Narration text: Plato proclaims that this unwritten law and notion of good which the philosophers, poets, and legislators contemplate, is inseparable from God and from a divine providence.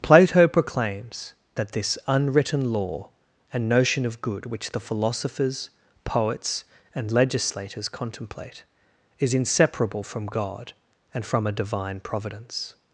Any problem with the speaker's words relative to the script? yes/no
no